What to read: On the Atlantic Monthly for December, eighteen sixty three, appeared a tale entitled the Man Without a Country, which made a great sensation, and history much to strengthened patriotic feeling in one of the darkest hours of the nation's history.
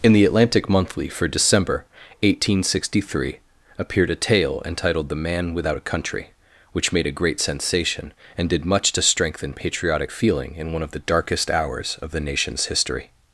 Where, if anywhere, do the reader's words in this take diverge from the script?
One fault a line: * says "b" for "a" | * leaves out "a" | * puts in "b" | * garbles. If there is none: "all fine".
* says "In" for "On"
* says "did" for "history"
* says "strengthen" for "strengthened"